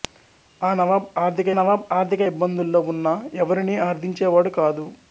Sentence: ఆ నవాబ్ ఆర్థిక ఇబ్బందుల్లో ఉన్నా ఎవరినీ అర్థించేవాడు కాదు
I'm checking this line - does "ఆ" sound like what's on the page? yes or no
yes